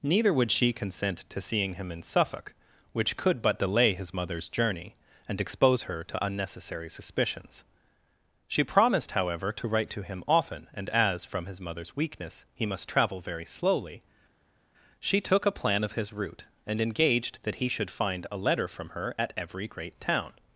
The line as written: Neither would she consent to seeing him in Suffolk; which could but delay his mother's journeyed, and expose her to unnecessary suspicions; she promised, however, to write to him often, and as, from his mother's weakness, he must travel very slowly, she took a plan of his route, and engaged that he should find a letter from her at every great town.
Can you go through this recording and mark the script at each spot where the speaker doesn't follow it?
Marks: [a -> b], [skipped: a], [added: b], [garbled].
Neither would she consent to seeing him in Suffolk; which could but delay his mother's [journeyed, -> journey] and expose her to unnecessary suspicions; she promised, however, to write to him often, and as, from his mother's weakness, he must travel very slowly, she took a plan of his route, and engaged that he should find a letter from her at every great town.